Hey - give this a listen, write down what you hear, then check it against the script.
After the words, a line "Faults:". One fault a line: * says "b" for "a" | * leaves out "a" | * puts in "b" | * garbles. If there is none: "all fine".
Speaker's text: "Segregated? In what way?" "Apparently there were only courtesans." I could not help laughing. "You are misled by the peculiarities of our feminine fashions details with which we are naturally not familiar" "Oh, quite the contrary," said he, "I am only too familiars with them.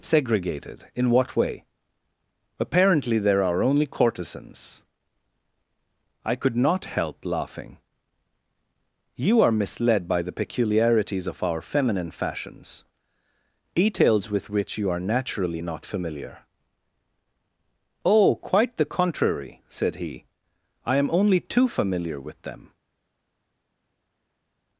"Segregated? In what way?" "Apparently there are only courtesans." I could not help laughing. "You are misled by the peculiarities of our feminine fashions details with which you are naturally not familiar" "Oh, quite the contrary," said he, "I am only too familiar with them.
Faults:
* says "are" for "were"
* says "you" for "we"
* says "familiar" for "familiars"